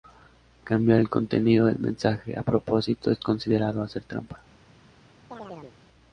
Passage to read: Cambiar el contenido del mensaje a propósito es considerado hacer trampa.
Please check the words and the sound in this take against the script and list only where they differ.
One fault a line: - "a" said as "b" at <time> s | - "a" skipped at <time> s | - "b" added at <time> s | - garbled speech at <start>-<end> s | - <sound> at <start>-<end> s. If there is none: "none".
- chirp at 5.3-5.8 s